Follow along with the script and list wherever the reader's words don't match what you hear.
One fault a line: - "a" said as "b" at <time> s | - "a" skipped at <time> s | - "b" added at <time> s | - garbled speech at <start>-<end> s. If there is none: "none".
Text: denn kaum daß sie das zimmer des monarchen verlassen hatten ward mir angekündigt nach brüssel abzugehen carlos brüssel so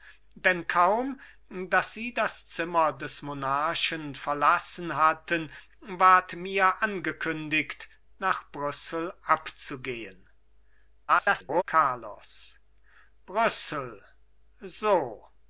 - garbled speech at 11.1-11.6 s